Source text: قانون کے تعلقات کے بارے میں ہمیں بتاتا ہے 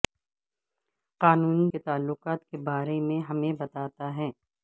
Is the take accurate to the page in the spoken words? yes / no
yes